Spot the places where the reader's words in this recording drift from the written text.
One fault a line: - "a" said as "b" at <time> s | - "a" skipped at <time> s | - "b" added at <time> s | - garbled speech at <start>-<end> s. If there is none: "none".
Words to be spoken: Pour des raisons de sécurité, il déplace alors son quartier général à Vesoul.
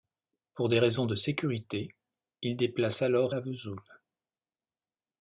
- "son quartier général" skipped at 3.4 s